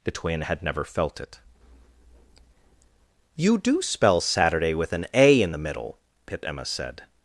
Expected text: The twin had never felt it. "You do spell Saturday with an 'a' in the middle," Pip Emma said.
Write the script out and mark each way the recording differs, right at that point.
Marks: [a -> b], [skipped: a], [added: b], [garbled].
The twin had never felt it. "You do spell Saturday with an 'a' in the middle," Pip Emma said.